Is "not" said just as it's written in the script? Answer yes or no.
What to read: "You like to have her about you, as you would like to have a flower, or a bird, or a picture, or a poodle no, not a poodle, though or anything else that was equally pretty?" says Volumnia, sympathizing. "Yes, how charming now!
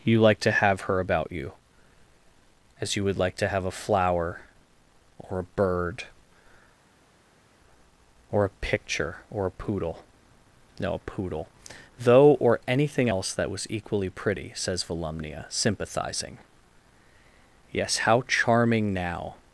no